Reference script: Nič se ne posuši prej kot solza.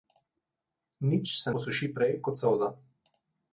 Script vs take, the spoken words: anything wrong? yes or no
yes